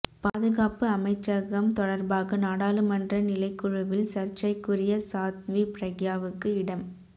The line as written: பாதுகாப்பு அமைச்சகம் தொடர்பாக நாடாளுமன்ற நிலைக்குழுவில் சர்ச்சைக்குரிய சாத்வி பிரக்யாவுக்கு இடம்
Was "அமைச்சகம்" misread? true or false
false